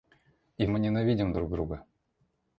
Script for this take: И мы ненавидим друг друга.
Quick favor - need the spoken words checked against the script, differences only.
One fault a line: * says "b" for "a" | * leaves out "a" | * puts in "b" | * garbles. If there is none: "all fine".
all fine